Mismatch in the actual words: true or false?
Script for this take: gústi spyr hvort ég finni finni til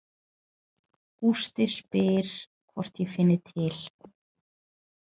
true